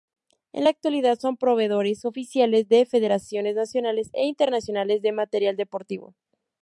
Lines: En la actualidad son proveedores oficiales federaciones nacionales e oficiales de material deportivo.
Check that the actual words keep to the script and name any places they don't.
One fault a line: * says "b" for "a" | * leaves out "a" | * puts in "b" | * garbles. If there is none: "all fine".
* puts in "de"
* says "internacionales" for "oficiales"